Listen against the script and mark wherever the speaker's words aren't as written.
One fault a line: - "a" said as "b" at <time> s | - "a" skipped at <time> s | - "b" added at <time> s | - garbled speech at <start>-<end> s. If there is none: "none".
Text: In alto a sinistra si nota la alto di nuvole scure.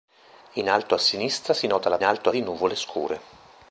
none